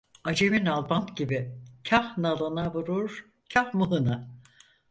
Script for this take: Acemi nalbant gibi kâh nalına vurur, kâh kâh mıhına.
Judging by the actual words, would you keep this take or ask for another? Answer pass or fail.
fail